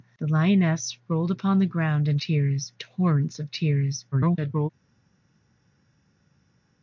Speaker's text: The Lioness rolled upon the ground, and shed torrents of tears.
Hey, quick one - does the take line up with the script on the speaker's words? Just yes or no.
no